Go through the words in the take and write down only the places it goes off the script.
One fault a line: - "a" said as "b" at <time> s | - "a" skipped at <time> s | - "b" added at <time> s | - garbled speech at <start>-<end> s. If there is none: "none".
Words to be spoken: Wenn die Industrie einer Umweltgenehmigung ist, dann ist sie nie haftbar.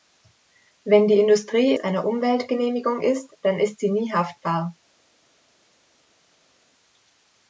none